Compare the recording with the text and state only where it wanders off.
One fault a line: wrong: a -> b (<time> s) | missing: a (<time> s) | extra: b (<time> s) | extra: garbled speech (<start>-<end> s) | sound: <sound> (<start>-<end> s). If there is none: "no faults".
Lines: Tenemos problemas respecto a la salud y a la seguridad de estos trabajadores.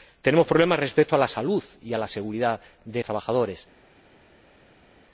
missing: estos (3.0 s)